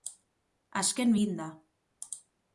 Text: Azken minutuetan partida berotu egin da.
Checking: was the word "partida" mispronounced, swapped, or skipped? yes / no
yes